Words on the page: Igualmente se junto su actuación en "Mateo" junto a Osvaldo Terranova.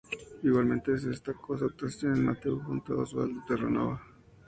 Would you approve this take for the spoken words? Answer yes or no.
no